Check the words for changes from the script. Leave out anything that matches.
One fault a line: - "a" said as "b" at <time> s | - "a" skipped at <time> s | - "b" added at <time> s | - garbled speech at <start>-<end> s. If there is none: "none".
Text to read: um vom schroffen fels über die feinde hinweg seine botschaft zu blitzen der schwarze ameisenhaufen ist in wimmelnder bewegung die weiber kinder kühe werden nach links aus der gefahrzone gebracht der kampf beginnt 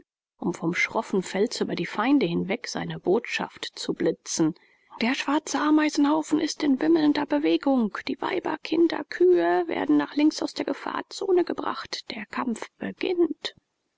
none